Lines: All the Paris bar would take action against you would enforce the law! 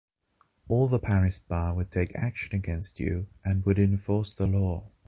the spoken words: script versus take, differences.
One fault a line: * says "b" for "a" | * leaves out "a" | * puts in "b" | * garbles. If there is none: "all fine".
* puts in "and"